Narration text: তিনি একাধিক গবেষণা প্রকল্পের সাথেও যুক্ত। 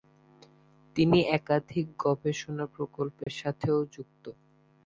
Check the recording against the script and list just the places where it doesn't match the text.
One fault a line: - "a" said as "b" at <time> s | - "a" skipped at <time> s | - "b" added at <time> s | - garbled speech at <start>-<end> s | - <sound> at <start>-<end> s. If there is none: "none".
- dropout at 3.2-3.3 s